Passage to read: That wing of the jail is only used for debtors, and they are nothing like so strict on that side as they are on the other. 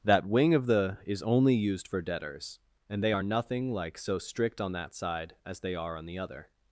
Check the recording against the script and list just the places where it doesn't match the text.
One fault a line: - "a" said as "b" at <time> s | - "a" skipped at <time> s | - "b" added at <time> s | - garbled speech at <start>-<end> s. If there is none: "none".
- "jail" skipped at 1.0 s